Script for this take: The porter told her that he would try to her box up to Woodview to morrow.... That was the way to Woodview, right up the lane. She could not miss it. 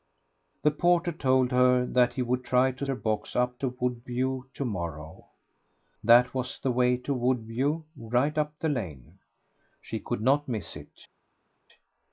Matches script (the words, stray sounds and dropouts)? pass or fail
pass